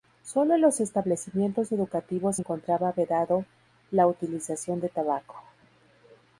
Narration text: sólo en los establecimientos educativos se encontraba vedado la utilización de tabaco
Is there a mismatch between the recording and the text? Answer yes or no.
no